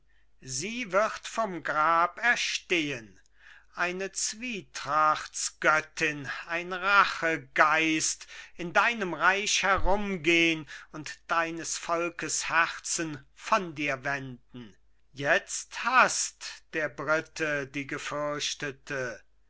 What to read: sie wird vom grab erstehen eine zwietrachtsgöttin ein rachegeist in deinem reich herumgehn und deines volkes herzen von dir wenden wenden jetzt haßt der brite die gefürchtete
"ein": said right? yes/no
yes